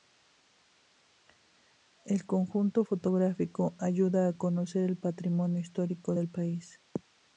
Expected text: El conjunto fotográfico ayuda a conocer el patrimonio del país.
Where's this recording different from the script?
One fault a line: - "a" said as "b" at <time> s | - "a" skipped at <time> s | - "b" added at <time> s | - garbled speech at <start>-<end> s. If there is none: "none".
- "histórico" added at 5.6 s